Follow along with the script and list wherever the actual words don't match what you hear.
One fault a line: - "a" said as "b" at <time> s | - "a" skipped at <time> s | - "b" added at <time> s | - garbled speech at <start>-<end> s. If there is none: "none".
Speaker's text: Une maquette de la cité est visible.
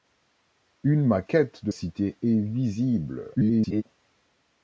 - "la" skipped at 1.7 s
- garbled speech at 3.3-3.8 s